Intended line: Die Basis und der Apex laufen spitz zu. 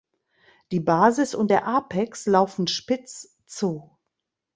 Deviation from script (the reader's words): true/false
false